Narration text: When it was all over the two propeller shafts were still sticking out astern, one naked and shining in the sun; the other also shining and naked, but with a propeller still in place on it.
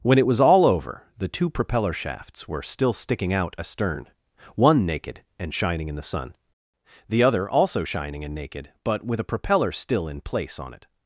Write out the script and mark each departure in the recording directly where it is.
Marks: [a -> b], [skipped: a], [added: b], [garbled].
When it was all over the two propeller shafts were still sticking out astern, one naked and shining in the sun; the other also shining and naked, but with a propeller still in place on it.